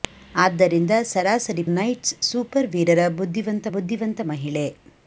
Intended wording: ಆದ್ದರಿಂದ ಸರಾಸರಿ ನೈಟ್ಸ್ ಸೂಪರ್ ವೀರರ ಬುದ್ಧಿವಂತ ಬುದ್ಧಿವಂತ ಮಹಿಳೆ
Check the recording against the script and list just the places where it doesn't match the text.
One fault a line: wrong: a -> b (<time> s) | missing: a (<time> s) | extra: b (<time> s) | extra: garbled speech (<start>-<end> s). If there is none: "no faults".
no faults